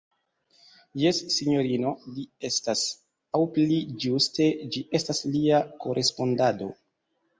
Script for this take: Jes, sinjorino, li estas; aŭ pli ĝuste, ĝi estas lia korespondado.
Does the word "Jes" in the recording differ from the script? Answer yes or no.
no